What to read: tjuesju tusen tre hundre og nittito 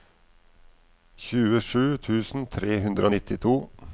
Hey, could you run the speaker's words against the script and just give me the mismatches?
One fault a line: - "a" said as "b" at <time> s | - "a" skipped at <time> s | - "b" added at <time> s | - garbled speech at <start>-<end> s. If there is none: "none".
none